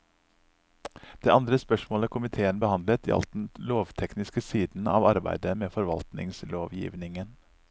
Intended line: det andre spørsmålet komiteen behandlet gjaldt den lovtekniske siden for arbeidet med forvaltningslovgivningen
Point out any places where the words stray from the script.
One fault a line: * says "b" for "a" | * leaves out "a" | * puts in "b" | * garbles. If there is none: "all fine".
* says "av" for "for"